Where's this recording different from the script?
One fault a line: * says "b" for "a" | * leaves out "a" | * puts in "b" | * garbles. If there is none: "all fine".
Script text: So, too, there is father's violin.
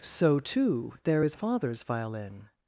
all fine